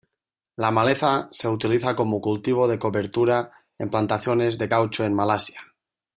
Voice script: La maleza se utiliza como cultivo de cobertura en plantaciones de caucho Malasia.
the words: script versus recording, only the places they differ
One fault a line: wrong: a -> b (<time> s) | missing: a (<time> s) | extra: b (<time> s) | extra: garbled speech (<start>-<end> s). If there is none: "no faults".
extra: en (5.0 s)